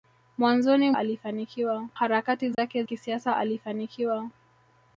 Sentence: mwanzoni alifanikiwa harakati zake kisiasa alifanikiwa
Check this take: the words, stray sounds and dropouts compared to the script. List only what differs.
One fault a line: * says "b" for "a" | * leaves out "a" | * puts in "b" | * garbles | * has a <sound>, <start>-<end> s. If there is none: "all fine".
* has a dropout, 2.5-2.6 s